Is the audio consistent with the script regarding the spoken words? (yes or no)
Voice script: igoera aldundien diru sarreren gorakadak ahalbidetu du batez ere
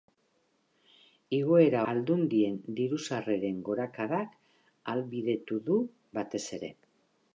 yes